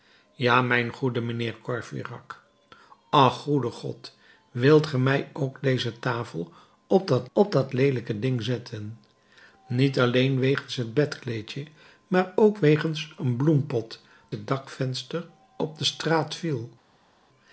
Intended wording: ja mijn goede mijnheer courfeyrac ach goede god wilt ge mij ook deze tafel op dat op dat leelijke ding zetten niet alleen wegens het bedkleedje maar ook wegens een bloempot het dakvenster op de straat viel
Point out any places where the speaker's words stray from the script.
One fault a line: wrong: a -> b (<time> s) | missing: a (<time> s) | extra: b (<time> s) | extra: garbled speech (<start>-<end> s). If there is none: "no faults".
no faults